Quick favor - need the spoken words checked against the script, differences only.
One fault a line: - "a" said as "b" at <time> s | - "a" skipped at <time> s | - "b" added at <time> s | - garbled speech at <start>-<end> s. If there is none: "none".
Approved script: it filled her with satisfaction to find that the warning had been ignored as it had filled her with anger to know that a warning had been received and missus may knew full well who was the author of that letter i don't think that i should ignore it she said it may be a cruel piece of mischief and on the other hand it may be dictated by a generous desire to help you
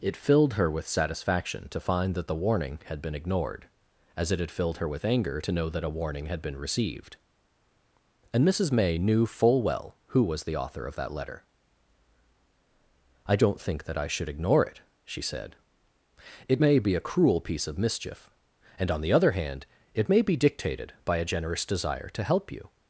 none